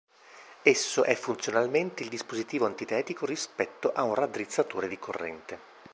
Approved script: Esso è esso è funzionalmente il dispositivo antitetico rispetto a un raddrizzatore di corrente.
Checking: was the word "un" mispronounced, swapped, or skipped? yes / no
no